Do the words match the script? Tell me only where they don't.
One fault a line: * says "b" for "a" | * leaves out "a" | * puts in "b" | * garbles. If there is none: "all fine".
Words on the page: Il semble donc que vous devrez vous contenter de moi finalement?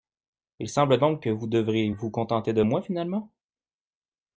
all fine